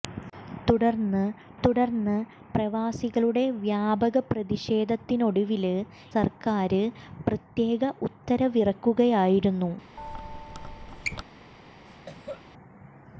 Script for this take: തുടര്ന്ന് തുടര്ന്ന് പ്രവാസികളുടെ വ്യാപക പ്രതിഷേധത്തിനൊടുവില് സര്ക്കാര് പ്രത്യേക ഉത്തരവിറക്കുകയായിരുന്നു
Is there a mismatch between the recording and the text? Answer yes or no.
no